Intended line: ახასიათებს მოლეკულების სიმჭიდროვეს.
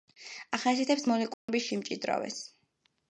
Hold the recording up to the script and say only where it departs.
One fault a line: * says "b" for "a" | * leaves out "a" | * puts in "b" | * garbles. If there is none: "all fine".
all fine